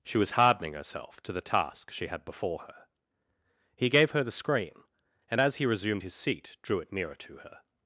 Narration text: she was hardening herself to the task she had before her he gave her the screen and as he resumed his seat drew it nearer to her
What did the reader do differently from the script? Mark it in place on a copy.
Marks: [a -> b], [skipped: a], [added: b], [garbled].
she was hardening herself to the task she had before her he gave her the screen and as he resumed his seat drew it nearer to her